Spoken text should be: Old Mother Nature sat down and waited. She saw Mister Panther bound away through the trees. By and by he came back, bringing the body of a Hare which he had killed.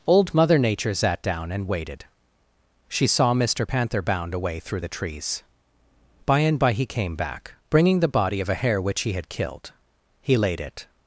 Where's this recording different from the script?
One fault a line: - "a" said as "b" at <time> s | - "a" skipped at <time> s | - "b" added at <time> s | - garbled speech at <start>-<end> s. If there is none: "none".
- "He laid it" added at 10.2 s